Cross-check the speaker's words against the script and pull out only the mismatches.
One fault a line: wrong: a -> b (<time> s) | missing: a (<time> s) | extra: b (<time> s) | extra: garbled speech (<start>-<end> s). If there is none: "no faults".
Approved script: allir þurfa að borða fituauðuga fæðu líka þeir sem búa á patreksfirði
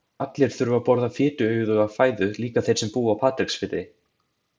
no faults